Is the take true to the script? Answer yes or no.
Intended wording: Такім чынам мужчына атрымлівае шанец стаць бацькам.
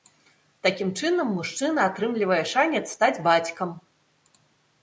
yes